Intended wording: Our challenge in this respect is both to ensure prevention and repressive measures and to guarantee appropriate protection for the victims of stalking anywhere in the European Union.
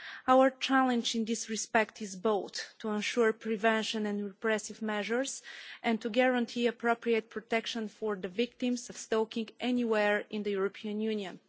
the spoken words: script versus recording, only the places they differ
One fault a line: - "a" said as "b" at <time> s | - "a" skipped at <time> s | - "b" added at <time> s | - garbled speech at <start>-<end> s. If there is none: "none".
none